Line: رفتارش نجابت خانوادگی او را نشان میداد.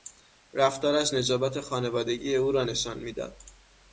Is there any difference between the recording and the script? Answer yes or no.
no